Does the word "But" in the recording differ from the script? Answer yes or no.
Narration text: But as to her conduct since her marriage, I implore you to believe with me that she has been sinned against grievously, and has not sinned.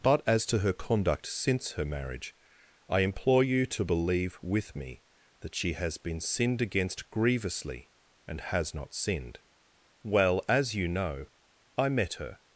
no